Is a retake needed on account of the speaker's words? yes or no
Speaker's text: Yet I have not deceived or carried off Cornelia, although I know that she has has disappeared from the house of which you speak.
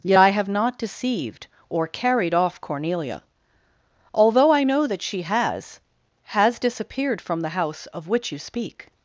no